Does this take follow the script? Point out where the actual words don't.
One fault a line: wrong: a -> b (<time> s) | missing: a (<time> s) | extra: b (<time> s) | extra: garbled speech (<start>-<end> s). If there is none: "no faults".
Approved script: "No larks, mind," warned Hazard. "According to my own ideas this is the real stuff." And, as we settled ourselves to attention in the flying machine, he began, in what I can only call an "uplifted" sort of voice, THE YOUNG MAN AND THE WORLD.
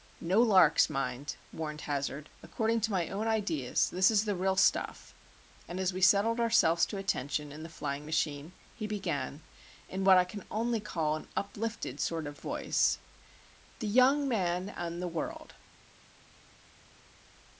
no faults